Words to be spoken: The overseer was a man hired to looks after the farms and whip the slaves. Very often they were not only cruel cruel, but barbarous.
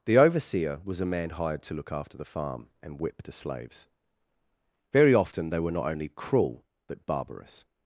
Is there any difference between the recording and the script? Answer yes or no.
yes